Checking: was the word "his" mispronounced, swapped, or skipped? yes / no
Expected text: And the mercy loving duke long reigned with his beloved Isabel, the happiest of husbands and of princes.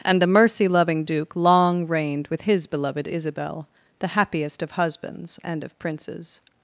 no